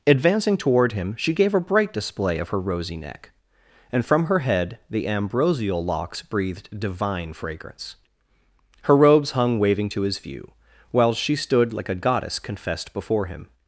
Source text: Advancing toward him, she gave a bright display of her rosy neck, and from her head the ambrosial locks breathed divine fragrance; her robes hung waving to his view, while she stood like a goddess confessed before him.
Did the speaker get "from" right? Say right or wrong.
right